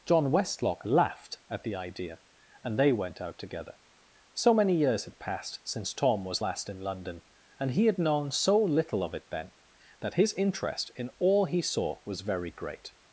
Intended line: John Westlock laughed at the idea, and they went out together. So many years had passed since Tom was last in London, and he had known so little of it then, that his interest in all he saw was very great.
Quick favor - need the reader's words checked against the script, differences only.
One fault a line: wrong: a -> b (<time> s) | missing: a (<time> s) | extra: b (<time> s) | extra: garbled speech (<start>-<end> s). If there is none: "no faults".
no faults